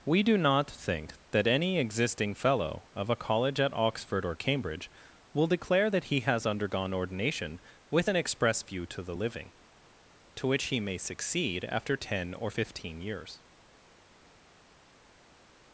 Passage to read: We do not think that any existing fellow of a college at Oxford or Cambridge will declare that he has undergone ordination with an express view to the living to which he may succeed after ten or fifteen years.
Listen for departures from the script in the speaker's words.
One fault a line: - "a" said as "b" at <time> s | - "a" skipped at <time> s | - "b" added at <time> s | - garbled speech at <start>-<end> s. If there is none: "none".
none